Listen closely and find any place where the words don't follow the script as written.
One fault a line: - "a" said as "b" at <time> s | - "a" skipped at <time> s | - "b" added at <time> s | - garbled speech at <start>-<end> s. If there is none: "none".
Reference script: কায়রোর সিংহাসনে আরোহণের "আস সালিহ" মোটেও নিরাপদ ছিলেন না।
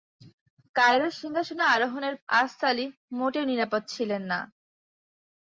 none